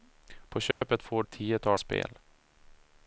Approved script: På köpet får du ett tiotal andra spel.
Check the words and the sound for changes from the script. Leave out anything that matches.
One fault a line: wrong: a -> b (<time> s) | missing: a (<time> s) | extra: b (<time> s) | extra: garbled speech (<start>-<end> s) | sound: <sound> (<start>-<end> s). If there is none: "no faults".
sound: dropout (0.7-0.8 s)
missing: du (1.2 s)
missing: andra (1.8 s)